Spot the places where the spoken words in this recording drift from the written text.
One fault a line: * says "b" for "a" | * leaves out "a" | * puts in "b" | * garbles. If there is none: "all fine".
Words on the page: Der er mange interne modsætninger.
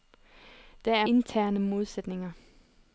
* leaves out "mange"